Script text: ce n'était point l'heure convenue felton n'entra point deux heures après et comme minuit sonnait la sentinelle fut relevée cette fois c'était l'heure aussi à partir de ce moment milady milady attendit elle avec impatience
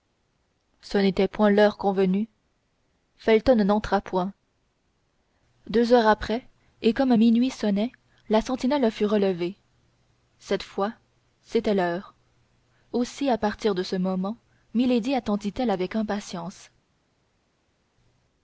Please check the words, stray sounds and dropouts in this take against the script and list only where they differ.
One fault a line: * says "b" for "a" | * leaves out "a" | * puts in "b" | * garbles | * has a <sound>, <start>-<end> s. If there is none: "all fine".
* leaves out "milady"